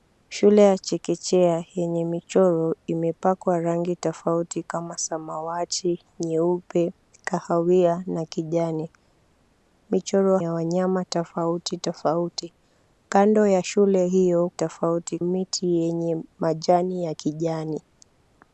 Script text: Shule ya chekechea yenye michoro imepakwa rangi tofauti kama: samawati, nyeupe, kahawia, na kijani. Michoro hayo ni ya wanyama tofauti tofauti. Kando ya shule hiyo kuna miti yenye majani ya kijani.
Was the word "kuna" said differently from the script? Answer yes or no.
yes